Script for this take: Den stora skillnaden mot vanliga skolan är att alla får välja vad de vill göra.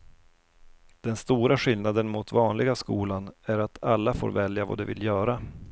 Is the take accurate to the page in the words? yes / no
yes